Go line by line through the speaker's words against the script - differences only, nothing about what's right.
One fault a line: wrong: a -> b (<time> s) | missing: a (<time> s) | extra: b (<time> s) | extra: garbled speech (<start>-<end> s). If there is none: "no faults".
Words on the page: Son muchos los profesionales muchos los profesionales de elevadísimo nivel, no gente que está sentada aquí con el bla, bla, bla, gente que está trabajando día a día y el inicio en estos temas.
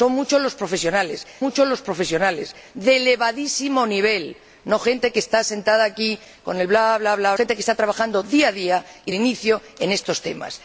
no faults